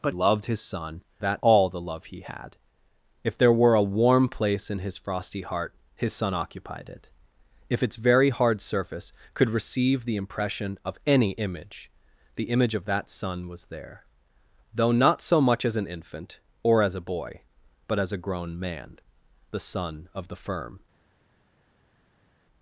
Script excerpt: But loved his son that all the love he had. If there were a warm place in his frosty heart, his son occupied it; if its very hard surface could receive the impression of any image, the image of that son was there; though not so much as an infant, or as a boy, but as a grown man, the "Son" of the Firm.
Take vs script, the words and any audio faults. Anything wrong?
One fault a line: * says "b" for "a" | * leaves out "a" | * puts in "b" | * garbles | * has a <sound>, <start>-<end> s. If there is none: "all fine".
all fine